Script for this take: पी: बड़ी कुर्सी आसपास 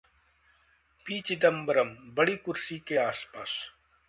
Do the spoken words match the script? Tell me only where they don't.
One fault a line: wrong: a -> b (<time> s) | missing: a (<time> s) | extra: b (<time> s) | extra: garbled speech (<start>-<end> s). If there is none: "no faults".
extra: चिदंबरम (1.2 s)
extra: के (2.9 s)